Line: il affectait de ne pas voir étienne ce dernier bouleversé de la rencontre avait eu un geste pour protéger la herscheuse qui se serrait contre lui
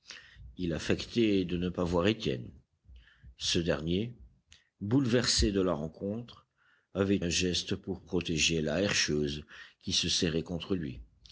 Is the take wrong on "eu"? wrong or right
wrong